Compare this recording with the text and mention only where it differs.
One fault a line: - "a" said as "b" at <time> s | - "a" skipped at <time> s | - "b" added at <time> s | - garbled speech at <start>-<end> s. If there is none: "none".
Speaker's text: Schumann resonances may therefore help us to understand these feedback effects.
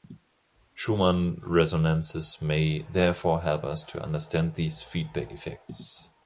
none